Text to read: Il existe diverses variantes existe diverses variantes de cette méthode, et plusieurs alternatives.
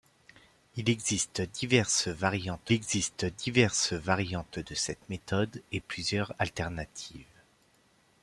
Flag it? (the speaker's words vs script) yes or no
no